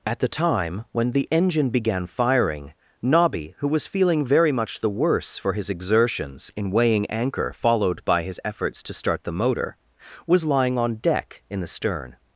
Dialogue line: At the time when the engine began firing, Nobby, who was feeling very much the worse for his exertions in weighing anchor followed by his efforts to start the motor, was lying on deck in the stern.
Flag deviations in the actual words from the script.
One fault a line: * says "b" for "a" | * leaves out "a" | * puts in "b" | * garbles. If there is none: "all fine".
all fine